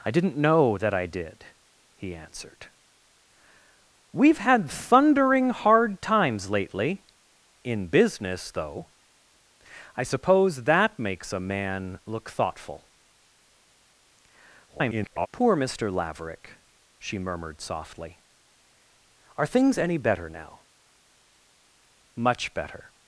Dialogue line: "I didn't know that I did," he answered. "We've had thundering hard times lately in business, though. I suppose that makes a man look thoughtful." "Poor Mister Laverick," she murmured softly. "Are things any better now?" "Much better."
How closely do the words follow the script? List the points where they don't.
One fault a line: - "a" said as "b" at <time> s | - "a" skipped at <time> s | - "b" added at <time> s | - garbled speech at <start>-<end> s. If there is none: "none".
- garbled speech at 14.7-15.3 s